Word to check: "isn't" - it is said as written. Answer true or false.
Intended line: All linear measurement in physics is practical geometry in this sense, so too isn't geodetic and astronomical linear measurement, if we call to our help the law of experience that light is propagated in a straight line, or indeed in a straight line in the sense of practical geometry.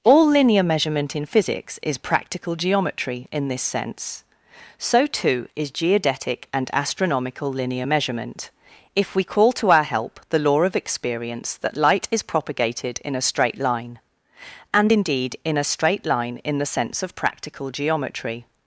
false